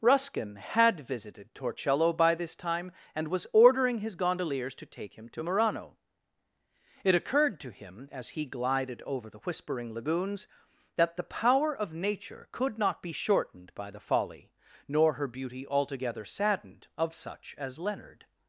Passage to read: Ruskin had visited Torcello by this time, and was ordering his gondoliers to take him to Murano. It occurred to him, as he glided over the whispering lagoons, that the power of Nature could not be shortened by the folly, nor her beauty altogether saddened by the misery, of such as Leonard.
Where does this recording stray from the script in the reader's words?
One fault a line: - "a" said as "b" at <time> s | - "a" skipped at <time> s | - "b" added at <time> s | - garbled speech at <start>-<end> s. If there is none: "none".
- "by the misery" skipped at 16.9 s